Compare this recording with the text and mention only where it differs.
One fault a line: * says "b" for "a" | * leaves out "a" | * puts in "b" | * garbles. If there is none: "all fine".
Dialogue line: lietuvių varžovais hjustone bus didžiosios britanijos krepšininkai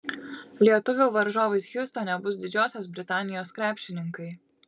all fine